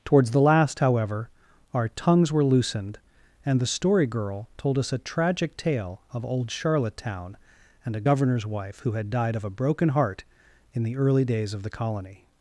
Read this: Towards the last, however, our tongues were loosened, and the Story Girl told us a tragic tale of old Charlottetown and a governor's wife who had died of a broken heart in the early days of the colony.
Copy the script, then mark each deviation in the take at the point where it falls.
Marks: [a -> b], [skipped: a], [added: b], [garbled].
Towards the last, however, our tongues were loosened, and the Story Girl told us a tragic tale of old Charlottetown and a governor's wife who had died of a broken heart in the early days of the colony.